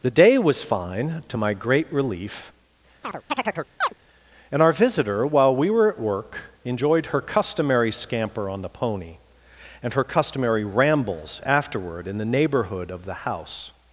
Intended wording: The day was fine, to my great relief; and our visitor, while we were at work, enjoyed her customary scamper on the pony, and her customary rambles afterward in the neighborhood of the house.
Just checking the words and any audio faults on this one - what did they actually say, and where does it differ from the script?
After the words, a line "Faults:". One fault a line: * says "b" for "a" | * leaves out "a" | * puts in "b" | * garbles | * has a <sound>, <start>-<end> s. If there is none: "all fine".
The day was fine, to my great relief; and our visitor, while we were at work, enjoyed her customary scamper on the pony, and her customary rambles afterward in the neighborhood of the house.
Faults:
* has a chirp, 3.0-3.9 s